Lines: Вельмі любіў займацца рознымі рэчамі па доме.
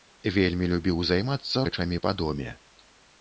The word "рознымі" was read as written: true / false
false